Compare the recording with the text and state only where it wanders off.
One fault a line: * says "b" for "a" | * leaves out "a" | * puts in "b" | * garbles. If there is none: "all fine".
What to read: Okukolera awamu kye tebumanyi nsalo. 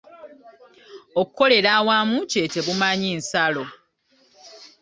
all fine